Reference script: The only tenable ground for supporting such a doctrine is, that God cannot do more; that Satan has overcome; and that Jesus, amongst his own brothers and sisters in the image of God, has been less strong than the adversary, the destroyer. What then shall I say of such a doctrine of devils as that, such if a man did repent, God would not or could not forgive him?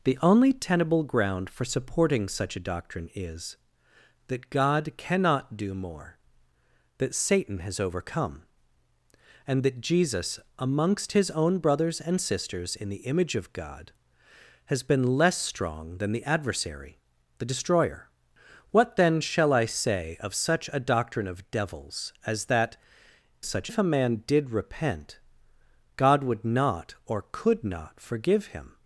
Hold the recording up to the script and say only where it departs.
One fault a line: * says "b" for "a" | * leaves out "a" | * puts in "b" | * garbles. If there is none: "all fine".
all fine